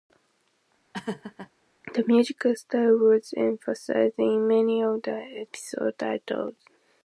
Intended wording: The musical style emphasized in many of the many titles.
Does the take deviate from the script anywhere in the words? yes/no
yes